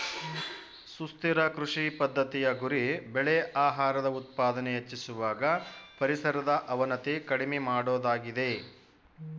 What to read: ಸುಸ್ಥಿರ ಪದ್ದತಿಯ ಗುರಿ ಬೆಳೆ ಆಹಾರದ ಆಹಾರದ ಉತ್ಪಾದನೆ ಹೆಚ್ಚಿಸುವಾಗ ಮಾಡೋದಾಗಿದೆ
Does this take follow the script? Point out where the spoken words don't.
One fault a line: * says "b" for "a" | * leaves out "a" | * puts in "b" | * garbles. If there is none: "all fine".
* puts in "ಕೃಷಿ"
* leaves out "ಆಹಾರದ"
* puts in "ಪರಿಸರದ ಅವನತಿ ಕಡಿಮೆ"